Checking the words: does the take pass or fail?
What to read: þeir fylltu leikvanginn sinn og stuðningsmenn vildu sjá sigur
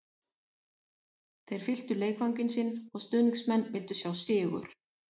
pass